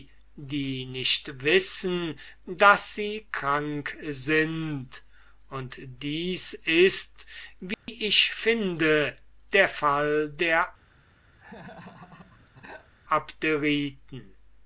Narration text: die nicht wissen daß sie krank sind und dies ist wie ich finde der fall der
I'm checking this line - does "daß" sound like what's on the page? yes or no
yes